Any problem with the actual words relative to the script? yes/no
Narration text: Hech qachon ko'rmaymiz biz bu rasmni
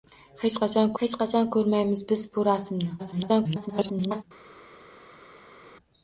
yes